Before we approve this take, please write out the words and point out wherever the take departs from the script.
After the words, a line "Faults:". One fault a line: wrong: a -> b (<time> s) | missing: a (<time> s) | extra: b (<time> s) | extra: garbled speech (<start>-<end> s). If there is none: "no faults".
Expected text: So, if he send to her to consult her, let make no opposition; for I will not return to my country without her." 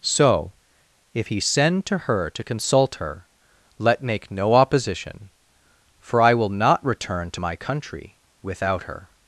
So, if he send to her to consult her, let make no opposition; for I will not return to my country without her."
Faults:
no faults